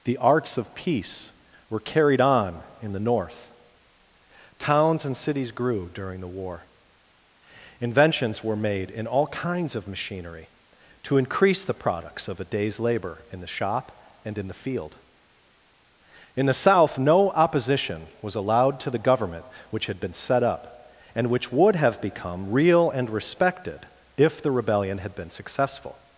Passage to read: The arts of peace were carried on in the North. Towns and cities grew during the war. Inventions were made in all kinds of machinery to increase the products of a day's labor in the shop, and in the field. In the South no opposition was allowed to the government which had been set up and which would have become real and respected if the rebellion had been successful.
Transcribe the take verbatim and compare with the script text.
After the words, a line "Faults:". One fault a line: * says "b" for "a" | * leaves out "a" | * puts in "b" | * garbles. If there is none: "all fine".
The arts of peace were carried on in the North. Towns and cities grew during the war. Inventions were made in all kinds of machinery to increase the products of a day's labor in the shop, and in the field. In the South no opposition was allowed to the government which had been set up and which would have become real and respected if the rebellion had been successful.
Faults:
all fine